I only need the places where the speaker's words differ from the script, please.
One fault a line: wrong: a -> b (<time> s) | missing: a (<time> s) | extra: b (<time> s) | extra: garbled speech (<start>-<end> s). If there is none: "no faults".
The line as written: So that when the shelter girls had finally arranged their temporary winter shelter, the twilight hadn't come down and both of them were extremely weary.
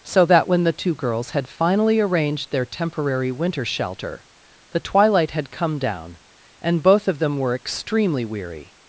wrong: shelter -> two (0.7 s)
wrong: hadn't -> had (5.3 s)